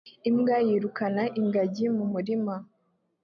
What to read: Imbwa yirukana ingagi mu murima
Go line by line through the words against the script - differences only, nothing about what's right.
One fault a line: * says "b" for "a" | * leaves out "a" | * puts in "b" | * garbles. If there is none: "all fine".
all fine